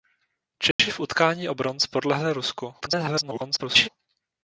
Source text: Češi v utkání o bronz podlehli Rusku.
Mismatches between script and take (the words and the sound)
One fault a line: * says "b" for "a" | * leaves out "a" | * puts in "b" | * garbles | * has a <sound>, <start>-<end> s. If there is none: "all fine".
* has a dropout, 0.7-0.8 s
* garbles